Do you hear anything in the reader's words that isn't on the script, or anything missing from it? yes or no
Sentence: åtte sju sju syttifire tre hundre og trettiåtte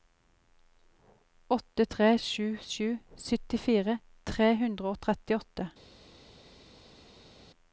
yes